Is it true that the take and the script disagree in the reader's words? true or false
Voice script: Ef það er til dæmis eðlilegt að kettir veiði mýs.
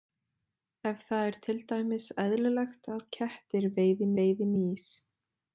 true